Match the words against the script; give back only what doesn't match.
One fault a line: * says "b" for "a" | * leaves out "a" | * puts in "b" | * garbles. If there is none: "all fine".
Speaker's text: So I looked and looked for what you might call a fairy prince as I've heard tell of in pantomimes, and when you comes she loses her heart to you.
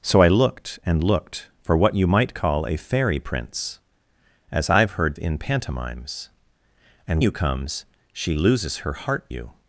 * leaves out "tell of"
* leaves out "when"
* leaves out "to"